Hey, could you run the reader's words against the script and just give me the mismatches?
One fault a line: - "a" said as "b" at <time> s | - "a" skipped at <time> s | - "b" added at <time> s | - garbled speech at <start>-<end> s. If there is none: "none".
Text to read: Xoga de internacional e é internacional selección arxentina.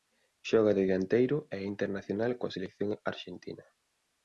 - "internacional" said as "dianteiro" at 0.9 s
- "coa" added at 2.4 s